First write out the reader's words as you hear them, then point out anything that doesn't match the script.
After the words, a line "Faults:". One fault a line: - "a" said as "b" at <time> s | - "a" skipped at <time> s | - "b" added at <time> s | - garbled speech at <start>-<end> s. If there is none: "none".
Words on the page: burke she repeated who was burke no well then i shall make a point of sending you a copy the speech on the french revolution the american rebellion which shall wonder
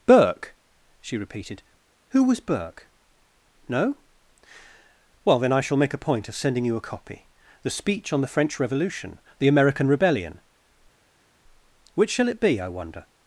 burke she repeated who was burke no well then i shall make a point of sending you a copy the speech on the french revolution the american rebellion which shall it be i wonder
Faults:
- "it be i" added at 12.3 s